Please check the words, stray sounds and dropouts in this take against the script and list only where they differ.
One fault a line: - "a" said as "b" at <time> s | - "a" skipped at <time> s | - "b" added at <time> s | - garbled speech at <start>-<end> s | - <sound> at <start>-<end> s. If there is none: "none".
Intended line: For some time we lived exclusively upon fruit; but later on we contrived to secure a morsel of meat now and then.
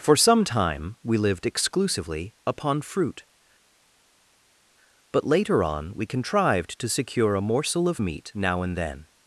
none